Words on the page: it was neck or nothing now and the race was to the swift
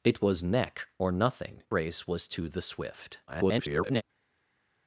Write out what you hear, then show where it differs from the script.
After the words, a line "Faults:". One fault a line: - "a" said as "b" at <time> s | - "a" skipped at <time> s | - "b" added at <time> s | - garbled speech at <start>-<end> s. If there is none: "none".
it was neck or nothing race was to the swift [garbled]
Faults:
- "now and the" skipped at 1.6 s
- garbled speech at 3.3-4.0 s